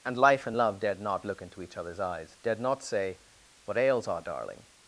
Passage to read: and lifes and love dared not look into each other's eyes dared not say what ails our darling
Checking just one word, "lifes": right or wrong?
wrong